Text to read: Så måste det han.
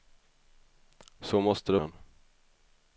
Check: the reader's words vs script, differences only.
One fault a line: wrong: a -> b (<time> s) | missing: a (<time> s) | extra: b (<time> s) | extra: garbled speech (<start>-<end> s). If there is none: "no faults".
no faults